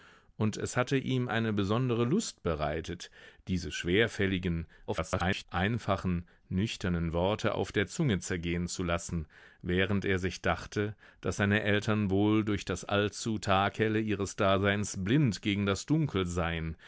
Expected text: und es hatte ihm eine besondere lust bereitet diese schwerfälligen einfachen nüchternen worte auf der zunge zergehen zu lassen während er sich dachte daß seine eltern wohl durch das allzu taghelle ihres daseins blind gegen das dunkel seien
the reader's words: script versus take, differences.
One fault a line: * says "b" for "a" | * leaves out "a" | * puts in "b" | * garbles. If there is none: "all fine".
* garbles